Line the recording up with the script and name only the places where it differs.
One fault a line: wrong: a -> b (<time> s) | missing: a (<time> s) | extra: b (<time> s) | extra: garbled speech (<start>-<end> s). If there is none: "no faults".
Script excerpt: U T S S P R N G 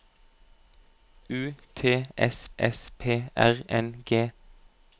no faults